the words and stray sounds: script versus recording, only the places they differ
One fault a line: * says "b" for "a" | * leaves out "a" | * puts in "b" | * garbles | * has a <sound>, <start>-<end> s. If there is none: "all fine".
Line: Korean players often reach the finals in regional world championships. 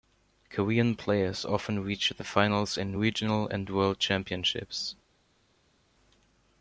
* puts in "and"